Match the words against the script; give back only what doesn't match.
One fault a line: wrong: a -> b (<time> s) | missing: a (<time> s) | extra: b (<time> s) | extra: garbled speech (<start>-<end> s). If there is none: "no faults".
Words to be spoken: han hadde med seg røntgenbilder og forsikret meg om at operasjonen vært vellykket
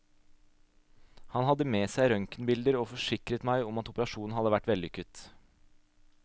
extra: hadde (4.4 s)